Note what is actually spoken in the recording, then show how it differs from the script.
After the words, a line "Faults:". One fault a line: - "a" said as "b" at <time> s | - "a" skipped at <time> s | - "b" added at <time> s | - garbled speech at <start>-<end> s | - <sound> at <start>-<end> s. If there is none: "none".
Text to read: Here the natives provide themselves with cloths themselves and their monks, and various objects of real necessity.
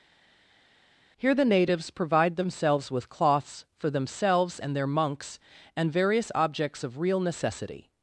Here the natives provide themselves with cloths for themselves and their monks, and various objects of real necessity.
Faults:
- "for" added at 3.8 s